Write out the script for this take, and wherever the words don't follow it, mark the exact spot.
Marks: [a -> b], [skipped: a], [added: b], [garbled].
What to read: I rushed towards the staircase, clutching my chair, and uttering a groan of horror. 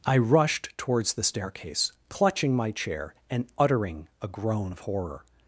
I rushed towards the staircase, clutching my chair, and uttering a groan of horror.